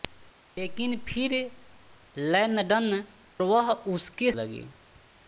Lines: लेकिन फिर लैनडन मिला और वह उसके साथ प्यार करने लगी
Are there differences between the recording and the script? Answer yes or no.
yes